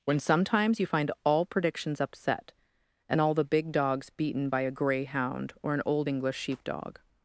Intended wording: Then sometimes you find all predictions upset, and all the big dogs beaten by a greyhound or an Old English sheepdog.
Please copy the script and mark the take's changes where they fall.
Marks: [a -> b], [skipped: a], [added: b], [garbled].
[Then -> When] sometimes you find all predictions upset, and all the big dogs beaten by a greyhound or an Old English sheepdog.